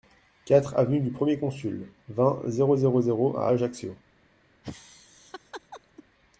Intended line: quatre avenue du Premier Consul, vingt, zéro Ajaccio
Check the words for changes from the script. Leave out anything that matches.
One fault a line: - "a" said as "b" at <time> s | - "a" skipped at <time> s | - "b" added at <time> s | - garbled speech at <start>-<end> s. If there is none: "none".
- "zéro zéro à" added at 2.8 s